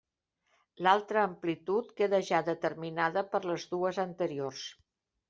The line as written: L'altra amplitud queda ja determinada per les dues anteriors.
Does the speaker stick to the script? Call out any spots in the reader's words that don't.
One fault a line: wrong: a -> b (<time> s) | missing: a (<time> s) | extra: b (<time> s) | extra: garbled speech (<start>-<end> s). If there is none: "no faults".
no faults